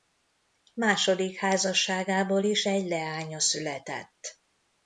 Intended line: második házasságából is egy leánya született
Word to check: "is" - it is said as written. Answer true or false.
true